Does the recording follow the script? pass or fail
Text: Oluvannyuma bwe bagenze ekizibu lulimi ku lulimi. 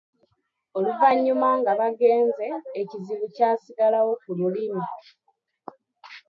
fail